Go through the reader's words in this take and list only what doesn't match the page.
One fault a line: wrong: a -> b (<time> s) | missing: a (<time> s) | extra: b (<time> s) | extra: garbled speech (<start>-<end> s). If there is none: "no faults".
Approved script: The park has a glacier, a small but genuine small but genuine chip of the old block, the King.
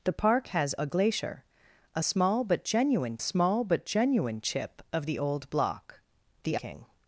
no faults